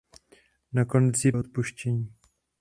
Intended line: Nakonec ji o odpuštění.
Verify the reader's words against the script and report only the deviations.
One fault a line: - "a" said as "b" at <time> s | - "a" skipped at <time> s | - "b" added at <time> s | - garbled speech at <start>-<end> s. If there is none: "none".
none